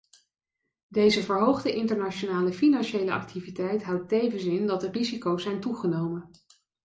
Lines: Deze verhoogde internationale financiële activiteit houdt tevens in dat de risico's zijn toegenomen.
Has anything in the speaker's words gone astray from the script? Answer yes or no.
no